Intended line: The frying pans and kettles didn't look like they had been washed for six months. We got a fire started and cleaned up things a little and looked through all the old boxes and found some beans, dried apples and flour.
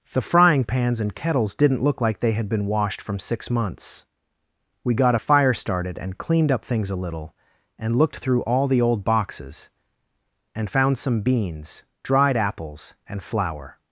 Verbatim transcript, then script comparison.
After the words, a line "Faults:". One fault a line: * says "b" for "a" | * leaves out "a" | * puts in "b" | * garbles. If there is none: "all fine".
The frying pans and kettles didn't look like they had been washed from six months. We got a fire started and cleaned up things a little and looked through all the old boxes and found some beans, dried apples and flour.
Faults:
* says "from" for "for"